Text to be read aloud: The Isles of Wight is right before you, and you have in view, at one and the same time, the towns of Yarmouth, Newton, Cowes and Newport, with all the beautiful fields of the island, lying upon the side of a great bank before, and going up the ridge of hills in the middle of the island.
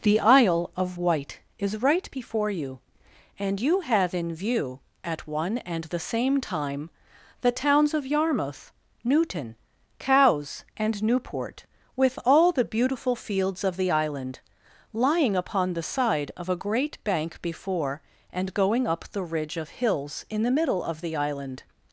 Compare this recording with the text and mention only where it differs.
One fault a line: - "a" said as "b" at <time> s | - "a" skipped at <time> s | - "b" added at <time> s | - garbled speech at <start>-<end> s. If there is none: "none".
- "Isles" said as "Isle" at 0.2 s